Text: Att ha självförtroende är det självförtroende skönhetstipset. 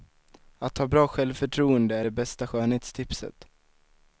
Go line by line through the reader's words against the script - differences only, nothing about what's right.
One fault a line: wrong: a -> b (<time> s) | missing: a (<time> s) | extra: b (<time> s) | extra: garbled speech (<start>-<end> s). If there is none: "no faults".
extra: bra (0.9 s)
wrong: självförtroende -> bästa (2.1 s)